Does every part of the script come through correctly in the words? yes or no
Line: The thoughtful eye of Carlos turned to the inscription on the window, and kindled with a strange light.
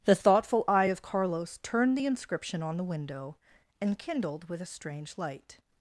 no